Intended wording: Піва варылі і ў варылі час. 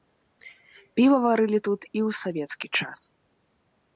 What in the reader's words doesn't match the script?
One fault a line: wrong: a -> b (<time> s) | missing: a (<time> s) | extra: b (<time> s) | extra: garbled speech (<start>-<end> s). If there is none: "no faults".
extra: тут (1.7 s)
wrong: варылі -> савецкі (2.2 s)